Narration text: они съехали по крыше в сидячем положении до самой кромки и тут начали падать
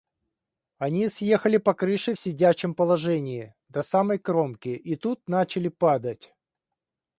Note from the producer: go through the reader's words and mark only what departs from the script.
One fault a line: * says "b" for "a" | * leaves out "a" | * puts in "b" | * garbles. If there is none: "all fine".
all fine